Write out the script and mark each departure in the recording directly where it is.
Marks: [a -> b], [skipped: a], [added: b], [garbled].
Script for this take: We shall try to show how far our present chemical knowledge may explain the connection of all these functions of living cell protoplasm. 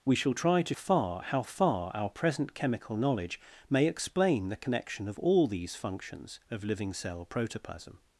We shall try to [show -> far] how far our present chemical knowledge may explain the connection of all these functions of living cell protoplasm.